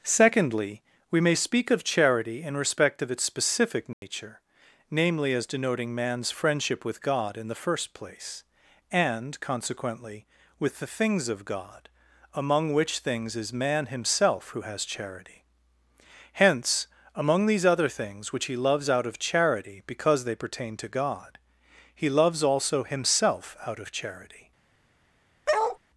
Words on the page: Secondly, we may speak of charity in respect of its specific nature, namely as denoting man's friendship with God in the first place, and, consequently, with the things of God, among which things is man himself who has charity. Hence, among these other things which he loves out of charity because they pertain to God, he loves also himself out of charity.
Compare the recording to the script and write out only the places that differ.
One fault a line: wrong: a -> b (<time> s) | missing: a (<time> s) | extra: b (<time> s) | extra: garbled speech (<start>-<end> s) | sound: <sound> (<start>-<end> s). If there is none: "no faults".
sound: dropout (3.9-4.0 s)
sound: bark (25.5-25.8 s)